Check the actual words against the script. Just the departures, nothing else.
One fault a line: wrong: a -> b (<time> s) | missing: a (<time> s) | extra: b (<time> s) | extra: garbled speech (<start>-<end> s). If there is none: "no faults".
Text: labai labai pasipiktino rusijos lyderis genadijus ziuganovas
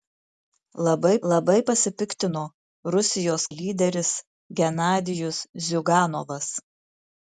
no faults